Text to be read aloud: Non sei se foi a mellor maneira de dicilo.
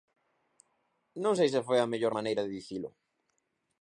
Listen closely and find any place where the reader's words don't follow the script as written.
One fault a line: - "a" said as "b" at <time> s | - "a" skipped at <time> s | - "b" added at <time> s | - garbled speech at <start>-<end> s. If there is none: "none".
none